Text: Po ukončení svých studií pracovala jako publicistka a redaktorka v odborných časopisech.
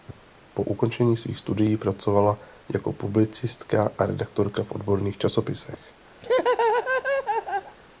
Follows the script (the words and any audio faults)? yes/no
no